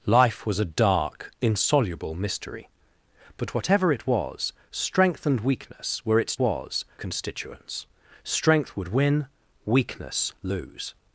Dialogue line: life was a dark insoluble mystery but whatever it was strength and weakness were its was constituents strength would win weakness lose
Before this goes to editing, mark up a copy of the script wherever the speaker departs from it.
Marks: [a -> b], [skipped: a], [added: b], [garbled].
life was a dark insoluble mystery but whatever it was strength and weakness were its was constituents strength would win weakness lose